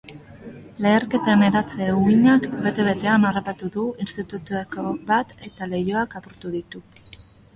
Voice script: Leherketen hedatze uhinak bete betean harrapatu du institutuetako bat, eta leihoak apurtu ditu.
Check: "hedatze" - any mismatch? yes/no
no